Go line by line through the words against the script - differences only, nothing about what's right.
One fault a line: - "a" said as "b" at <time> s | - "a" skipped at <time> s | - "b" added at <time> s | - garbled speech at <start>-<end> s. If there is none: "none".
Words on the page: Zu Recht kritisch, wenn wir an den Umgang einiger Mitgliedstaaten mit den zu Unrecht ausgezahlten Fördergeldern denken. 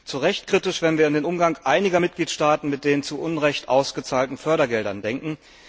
none